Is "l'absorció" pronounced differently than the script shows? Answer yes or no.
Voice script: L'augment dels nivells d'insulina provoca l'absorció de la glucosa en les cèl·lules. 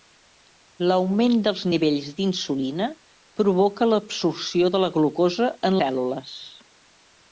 no